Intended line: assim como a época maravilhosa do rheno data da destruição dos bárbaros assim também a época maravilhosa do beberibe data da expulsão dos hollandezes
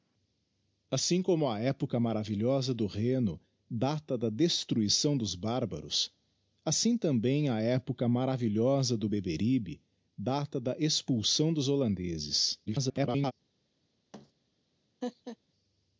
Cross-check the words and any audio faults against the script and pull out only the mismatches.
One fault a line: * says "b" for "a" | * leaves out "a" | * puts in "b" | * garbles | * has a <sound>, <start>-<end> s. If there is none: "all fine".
* garbles
* has a thud, 14.1-14.3 s
* has a laugh, 15.0-15.4 s